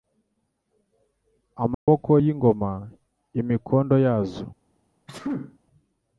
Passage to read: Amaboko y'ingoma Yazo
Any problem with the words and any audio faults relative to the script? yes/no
yes